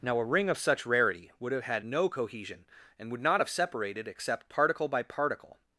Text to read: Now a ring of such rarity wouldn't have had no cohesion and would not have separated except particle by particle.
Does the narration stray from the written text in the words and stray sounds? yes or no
yes